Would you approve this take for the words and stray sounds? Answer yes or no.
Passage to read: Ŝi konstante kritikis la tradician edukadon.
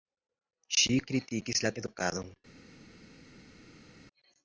no